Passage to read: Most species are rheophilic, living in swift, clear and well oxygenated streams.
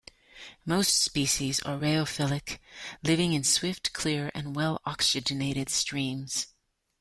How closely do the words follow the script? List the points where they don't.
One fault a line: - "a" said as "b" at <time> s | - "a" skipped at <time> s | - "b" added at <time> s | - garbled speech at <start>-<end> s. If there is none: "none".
none